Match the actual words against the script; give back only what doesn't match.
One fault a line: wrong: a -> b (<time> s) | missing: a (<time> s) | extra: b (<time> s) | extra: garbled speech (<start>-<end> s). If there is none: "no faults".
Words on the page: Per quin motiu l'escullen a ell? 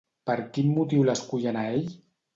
no faults